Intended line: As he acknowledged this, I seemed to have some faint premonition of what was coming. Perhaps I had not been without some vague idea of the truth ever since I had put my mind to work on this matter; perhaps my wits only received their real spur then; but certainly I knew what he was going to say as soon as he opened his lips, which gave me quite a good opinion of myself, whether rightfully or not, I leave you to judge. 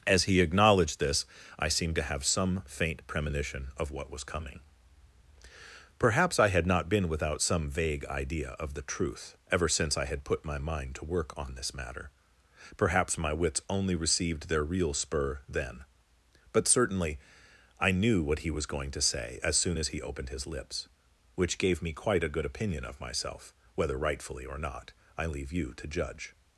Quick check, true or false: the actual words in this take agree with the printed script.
true